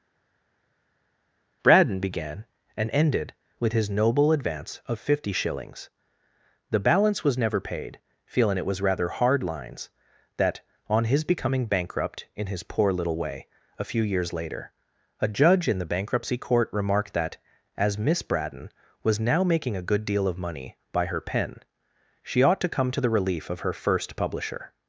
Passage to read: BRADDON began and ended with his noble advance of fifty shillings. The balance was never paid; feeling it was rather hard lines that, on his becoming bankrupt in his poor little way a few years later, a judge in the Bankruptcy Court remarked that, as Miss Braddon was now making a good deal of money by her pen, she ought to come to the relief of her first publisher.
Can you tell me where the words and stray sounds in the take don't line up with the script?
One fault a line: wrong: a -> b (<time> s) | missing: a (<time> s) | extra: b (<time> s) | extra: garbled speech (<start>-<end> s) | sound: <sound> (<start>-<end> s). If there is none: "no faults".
no faults